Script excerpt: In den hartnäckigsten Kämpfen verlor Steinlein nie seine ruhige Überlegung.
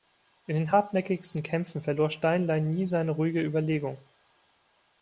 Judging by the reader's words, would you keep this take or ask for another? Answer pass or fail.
pass